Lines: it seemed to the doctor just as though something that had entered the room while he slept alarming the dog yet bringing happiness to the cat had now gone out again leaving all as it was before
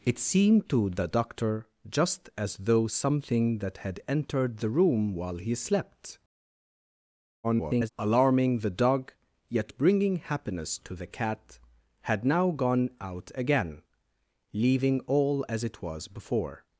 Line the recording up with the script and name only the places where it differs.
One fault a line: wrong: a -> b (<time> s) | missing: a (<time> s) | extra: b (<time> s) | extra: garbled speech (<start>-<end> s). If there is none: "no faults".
extra: garbled speech (7.4-7.9 s)